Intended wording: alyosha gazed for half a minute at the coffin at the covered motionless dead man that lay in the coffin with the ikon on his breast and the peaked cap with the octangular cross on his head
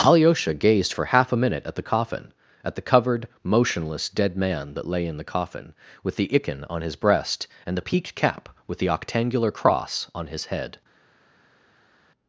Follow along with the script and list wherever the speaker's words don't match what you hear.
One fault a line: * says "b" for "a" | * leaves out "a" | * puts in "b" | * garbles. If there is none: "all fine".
all fine